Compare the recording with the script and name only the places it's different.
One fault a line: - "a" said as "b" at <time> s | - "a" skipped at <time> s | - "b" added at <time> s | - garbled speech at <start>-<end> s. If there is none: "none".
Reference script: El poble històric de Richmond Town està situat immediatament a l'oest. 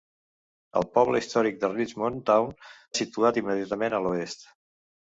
- "està" skipped at 2.5 s